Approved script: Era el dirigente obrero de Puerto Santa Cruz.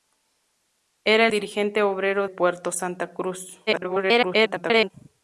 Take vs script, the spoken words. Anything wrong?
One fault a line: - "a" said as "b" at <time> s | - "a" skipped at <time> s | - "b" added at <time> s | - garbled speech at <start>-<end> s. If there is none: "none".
- "el" skipped at 1.3 s
- "de" skipped at 2.3 s
- garbled speech at 3.7-4.9 s